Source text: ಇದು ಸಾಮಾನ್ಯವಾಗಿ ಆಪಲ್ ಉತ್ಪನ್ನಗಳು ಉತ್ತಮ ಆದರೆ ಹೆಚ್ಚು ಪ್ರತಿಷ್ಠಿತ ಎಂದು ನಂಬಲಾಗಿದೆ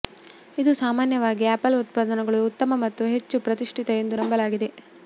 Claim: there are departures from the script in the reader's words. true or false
true